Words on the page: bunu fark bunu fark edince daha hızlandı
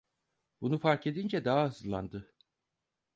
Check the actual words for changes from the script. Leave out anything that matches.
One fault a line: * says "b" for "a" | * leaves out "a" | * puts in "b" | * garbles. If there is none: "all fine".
* leaves out "bunu fark"